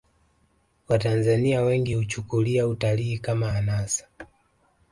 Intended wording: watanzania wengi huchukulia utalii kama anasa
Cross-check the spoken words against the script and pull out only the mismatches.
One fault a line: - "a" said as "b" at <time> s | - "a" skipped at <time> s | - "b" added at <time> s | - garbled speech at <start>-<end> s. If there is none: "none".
none